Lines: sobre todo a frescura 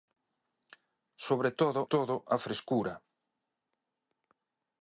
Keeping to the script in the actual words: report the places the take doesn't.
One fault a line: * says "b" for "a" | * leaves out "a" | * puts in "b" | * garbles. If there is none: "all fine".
* puts in "todo"